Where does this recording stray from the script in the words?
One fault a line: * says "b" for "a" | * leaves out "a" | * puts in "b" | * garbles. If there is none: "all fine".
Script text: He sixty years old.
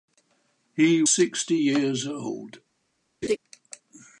all fine